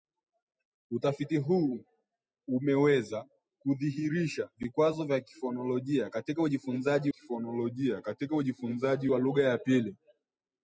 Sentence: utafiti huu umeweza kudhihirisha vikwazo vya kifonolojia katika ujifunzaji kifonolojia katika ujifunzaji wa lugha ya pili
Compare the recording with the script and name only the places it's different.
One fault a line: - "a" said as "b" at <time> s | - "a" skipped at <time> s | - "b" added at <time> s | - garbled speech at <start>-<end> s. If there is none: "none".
none